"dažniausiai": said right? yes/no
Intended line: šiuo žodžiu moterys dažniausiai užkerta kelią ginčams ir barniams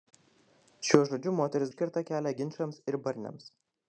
no